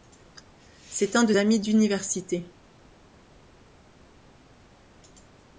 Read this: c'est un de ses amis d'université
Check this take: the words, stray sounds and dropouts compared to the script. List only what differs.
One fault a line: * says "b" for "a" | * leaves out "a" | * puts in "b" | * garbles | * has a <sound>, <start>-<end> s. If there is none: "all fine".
* leaves out "ses"